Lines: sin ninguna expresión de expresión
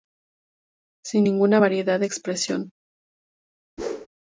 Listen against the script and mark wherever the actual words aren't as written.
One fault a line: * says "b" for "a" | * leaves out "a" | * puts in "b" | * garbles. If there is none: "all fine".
* says "variedad" for "expresión"